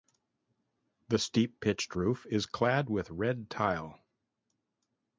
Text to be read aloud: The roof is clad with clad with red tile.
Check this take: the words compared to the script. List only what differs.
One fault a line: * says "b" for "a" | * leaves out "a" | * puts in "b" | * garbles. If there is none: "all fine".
* puts in "steep pitched"
* leaves out "clad with"